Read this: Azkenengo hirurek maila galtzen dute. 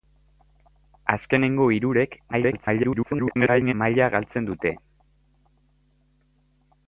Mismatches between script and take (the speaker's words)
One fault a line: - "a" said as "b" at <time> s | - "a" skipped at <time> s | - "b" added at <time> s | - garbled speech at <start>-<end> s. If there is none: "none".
- garbled speech at 2.3-3.7 s